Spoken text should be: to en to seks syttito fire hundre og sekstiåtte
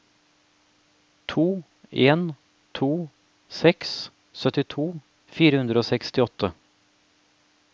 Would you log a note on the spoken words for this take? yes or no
no